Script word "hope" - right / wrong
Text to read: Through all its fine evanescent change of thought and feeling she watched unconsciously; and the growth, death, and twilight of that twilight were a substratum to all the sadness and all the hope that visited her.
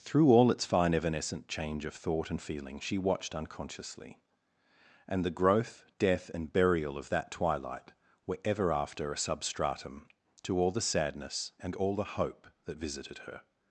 right